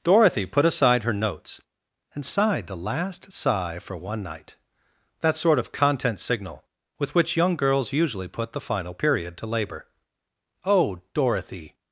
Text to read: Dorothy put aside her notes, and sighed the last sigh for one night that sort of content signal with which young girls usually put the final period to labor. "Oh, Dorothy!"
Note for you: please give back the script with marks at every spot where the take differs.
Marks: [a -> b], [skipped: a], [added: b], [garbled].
Dorothy put aside her notes, and sighed the last sigh for one night that sort of content signal with which young girls usually put the final period to labor. "Oh, Dorothy!"